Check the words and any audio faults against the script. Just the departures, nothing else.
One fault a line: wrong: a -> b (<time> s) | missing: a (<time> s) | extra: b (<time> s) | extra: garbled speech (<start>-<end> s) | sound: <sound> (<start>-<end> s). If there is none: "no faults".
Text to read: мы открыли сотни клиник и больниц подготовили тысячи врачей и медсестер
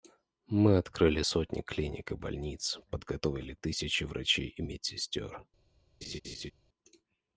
sound: laugh (6.0-6.5 s)